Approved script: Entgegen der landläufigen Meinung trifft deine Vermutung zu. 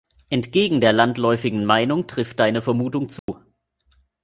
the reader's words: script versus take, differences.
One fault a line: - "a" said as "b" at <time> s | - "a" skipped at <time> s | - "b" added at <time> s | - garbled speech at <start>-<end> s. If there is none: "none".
none